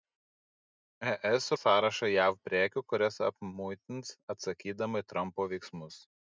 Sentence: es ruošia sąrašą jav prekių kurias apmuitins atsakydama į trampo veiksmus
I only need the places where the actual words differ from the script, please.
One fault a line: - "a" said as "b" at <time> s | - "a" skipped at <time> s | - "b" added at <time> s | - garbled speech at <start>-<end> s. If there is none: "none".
- "ruošia" skipped at 1.5 s